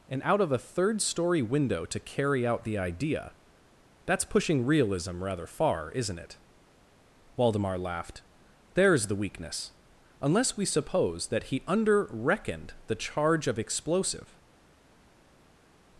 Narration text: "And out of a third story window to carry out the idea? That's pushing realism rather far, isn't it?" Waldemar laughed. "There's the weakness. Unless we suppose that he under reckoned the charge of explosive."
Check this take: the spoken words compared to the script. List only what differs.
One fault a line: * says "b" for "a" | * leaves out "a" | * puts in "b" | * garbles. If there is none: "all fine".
all fine